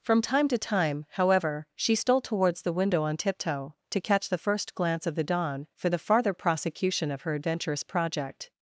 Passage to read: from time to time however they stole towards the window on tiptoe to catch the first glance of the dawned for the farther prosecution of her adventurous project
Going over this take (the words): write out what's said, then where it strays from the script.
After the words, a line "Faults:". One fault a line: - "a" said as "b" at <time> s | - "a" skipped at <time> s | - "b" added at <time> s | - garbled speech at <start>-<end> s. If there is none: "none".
from time to time however she stole towards the window on tiptoe to catch the first glance of the dawn for the farther prosecution of her adventurous project
Faults:
- "they" said as "she" at 1.8 s
- "dawned" said as "dawn" at 5.2 s